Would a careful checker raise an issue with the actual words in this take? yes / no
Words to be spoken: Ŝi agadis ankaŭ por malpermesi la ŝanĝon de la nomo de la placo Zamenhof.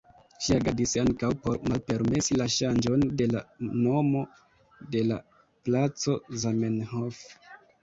no